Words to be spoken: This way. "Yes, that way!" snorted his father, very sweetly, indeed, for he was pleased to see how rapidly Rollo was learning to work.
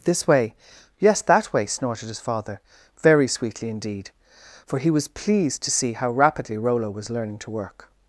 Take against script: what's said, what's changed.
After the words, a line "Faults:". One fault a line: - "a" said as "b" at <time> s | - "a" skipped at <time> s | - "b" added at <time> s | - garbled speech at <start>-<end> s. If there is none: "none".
This way. "Yes, that way!" snorted his father, very sweetly, indeed, for he was pleased to see how rapidly Rollo was learning to work.
Faults:
none